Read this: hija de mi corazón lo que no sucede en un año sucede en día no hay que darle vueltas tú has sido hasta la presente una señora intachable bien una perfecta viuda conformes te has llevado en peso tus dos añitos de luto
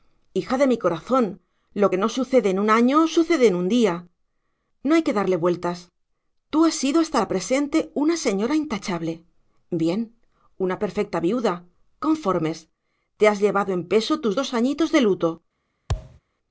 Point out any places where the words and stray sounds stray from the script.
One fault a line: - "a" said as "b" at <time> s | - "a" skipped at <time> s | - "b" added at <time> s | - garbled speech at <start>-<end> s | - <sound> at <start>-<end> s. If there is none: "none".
- "un" added at 3.6 s
- thud at 15.9-16.2 s